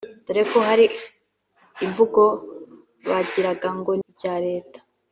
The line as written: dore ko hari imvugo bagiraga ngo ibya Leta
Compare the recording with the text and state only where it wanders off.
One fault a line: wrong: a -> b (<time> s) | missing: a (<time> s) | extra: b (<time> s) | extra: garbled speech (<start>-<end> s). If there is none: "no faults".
no faults